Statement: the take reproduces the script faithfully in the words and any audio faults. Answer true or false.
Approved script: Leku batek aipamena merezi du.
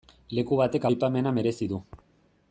true